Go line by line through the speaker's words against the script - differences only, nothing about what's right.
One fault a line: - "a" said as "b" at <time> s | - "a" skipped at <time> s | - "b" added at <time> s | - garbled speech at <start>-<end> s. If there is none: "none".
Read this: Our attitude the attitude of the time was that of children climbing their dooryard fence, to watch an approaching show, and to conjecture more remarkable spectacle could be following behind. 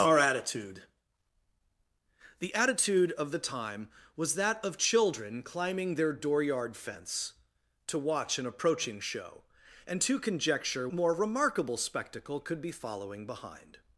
none